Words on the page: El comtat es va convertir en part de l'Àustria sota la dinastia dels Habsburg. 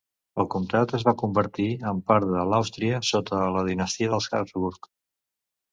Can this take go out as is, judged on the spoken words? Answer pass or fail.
pass